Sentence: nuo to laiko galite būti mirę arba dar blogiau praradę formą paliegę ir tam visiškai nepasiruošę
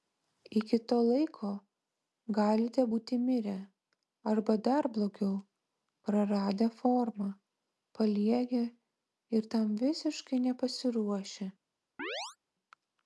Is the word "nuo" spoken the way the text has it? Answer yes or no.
no